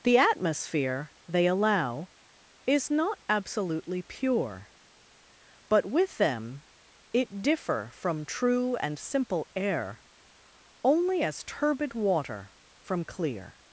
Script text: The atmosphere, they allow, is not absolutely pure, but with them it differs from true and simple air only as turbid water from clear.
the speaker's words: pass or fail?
fail